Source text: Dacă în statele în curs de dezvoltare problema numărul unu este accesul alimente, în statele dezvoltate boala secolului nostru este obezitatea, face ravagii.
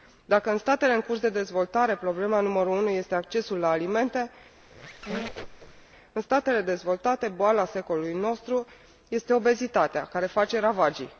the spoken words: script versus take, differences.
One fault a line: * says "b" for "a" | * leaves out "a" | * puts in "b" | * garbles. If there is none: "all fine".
* puts in "la"
* puts in "care"